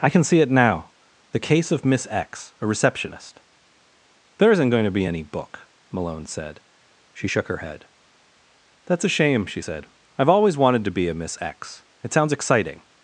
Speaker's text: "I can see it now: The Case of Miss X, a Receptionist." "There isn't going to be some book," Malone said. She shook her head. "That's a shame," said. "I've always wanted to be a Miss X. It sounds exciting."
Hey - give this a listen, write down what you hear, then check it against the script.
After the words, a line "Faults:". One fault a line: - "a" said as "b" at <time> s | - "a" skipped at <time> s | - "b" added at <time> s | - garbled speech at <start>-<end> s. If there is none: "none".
"I can see it now: The Case of Miss X, a Receptionist." "There isn't going to be any book," Malone said. She shook her head. "That's a shame," she said. "I've always wanted to be a Miss X. It sounds exciting."
Faults:
- "some" said as "any" at 5.0 s
- "she" added at 9.5 s